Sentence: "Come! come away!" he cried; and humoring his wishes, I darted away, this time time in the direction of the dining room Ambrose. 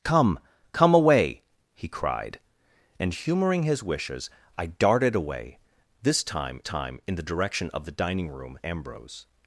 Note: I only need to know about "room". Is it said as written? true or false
true